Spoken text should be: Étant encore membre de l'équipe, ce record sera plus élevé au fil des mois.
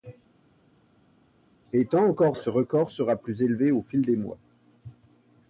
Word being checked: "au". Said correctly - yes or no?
yes